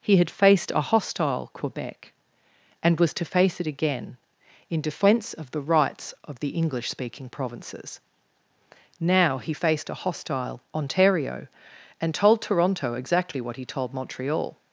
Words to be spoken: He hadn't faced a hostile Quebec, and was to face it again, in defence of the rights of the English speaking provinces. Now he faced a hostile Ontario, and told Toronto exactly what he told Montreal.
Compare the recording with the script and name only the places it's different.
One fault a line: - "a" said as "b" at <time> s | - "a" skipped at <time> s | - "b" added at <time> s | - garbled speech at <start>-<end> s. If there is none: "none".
- "hadn't" said as "had" at 0.2 s